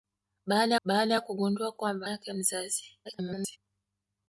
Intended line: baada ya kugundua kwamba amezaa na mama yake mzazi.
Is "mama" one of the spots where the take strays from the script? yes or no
yes